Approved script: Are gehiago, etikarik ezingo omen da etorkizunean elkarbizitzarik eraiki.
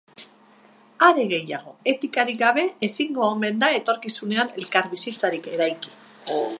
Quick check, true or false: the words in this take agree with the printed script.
false